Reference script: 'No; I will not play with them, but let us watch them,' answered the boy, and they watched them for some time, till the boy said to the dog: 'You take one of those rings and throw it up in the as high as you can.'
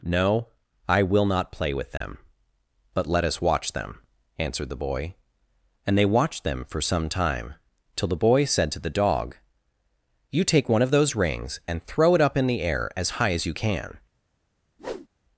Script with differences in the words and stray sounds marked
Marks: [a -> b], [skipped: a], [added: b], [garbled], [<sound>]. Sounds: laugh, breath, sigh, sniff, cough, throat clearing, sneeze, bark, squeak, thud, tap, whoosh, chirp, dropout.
'No; I will not play with them, [dropout] but let us watch them,' answered the boy, and they watched them for some time, till the boy said to the dog: 'You take one of those rings and throw it up in the [added: air] as high as you can.' [whoosh]